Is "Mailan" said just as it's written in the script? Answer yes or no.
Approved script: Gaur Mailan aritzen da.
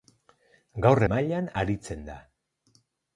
yes